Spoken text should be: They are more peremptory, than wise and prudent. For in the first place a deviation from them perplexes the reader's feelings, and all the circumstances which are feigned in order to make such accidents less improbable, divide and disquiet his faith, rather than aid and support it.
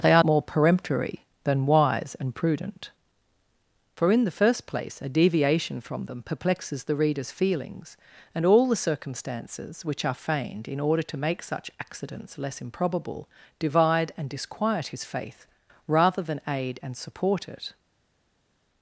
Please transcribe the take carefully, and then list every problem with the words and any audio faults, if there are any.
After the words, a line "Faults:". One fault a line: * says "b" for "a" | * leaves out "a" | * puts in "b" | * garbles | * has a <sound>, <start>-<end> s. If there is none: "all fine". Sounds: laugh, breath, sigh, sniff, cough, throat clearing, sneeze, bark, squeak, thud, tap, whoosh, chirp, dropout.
They are more peremptory, than wise and prudent. For in the first place a deviation from them perplexes the reader's feelings, and all the circumstances which are feigned in order to make such accidents less improbable, divide and disquiet his faith, rather than aid and support it.
Faults:
all fine